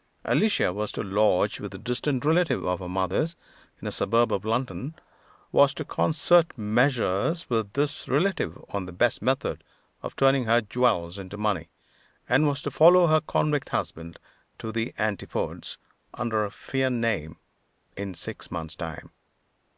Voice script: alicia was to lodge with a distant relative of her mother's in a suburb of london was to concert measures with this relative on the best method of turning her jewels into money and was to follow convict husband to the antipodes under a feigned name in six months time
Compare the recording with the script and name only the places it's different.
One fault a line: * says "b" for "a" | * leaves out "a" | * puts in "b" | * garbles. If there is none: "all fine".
* puts in "her"